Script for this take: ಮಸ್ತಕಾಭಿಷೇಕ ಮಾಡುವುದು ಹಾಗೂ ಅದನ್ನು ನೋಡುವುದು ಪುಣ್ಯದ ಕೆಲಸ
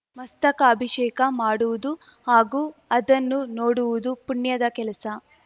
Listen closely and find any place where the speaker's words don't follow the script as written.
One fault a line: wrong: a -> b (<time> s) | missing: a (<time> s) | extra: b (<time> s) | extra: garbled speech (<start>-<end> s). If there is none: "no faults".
no faults